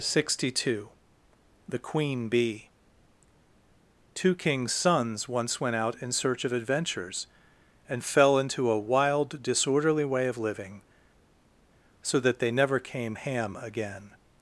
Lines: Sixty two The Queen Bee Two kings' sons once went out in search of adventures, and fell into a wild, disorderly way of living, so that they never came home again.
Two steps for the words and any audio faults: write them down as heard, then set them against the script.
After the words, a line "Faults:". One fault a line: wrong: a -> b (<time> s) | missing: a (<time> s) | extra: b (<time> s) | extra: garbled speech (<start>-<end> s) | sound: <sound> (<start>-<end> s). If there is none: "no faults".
Sixty two The Queen Bee Two kings' sons once went out in search of adventures, and fell into a wild, disorderly way of living, so that they never came ham again.
Faults:
wrong: home -> ham (13.1 s)